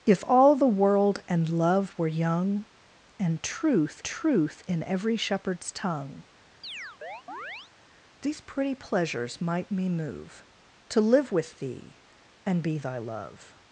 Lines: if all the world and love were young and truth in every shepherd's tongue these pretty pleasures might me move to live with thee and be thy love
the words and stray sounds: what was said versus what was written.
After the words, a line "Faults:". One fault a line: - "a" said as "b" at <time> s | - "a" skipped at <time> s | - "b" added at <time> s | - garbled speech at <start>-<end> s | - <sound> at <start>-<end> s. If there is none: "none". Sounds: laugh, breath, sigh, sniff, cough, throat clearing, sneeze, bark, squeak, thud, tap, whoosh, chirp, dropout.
if all the world and love were young and truth truth in every shepherd's tongue these pretty pleasures might me move to live with thee and be thy love
Faults:
- "truth" added at 4.0 s
- chirp at 6.6-7.7 s